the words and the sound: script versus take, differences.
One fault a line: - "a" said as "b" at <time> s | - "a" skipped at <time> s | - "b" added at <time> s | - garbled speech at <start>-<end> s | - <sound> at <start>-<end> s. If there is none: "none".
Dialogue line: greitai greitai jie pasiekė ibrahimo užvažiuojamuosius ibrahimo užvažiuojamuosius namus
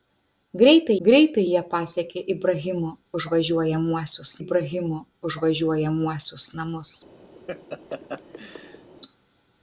- laugh at 7.3-8.9 s